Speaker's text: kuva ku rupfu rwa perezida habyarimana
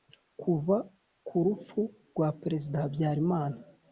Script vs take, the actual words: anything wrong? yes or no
no